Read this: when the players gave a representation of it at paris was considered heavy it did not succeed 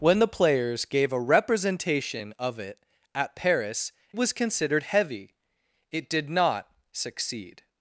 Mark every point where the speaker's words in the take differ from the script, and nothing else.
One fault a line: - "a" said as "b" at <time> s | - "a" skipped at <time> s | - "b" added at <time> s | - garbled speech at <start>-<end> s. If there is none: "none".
none